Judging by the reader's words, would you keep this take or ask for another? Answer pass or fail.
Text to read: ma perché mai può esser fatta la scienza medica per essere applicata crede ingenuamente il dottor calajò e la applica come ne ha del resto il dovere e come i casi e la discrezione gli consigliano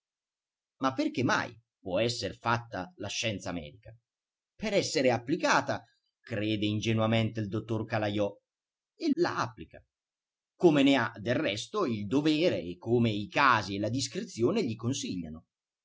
pass